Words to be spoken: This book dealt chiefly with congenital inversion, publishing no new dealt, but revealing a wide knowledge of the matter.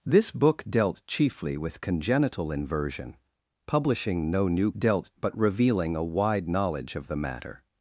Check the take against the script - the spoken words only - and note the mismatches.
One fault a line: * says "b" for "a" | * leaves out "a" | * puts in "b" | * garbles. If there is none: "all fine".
all fine